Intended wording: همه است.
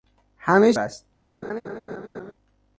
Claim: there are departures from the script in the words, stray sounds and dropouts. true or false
true